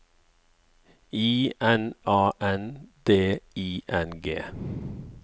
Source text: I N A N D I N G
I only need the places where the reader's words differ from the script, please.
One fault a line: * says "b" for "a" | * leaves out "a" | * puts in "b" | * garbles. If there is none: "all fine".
all fine